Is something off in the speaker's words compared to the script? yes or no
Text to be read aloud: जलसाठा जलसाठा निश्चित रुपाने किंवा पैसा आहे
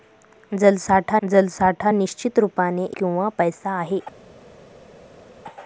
no